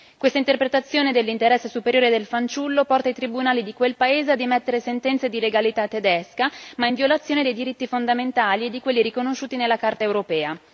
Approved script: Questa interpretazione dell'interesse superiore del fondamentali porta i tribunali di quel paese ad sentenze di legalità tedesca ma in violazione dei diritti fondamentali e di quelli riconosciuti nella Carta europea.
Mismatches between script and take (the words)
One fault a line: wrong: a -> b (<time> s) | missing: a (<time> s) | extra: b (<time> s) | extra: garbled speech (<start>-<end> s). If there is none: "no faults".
wrong: fondamentali -> fanciullo (2.2 s)
extra: emettere (4.4 s)